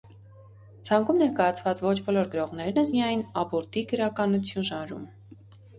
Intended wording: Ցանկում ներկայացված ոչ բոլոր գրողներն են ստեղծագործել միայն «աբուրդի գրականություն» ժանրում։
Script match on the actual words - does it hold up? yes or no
no